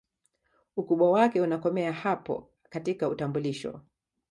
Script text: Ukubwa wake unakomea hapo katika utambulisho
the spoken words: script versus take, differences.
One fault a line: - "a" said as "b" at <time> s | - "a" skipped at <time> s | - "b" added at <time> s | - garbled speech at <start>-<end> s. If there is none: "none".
none